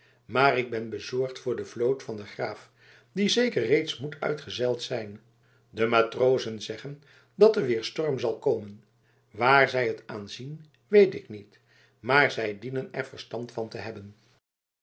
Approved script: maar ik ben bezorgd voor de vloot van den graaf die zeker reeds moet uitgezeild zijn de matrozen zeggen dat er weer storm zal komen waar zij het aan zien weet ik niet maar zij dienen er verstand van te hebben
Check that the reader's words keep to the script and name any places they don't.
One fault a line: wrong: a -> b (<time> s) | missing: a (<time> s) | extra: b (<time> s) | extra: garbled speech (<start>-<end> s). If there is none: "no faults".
no faults